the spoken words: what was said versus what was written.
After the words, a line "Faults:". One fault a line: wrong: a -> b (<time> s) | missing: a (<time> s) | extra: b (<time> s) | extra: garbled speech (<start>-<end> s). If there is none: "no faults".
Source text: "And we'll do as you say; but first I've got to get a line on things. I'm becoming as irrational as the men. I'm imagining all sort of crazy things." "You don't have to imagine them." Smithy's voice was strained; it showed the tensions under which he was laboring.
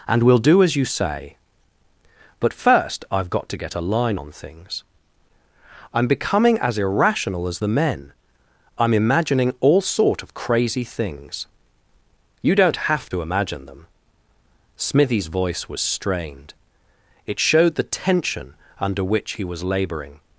"And we'll do as you say; but first I've got to get a line on things. I'm becoming as irrational as the men. I'm imagining all sort of crazy things." "You don't have to imagine them." Smithy's voice was strained; it showed the tension under which he was laboring.
Faults:
wrong: tensions -> tension (17.8 s)